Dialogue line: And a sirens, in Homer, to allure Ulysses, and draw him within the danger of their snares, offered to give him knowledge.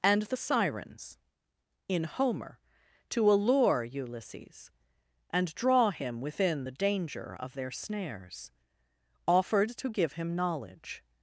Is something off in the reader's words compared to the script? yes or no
yes